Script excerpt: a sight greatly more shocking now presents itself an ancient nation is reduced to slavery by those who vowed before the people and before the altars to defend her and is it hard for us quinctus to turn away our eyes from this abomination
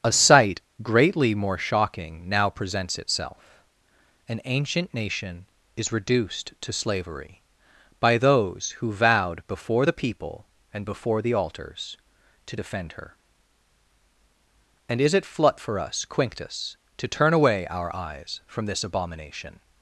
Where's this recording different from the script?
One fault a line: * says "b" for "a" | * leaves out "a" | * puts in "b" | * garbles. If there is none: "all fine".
* says "flut" for "hard"